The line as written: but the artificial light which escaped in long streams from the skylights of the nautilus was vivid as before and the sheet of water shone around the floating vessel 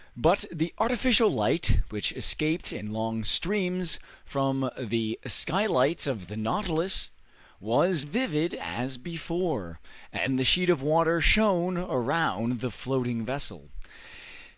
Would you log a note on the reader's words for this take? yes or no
no